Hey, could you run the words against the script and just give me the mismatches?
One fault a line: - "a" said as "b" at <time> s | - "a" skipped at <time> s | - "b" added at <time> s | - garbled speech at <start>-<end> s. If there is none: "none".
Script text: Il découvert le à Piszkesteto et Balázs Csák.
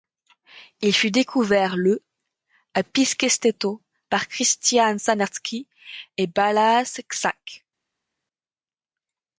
- "fut" added at 0.9 s
- "par Krisztián Sárneczky" added at 4.1 s